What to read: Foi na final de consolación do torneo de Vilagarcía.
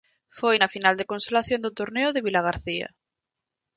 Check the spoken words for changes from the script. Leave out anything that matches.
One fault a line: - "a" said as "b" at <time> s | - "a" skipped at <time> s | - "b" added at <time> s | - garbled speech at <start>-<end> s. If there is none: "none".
none